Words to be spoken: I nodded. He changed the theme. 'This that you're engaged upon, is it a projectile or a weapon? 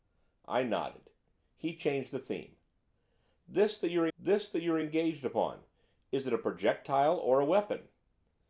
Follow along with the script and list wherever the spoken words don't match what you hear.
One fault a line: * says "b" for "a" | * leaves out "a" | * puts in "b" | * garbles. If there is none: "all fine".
* puts in "this that you're"